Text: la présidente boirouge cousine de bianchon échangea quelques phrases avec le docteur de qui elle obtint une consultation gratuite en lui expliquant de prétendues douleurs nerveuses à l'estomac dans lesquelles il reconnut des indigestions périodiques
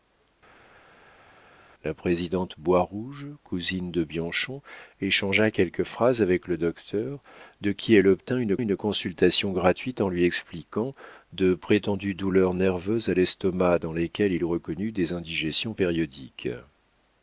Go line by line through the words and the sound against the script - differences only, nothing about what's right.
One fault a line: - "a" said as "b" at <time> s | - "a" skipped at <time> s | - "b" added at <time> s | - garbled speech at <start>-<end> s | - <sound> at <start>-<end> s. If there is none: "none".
- "une" added at 8.6 s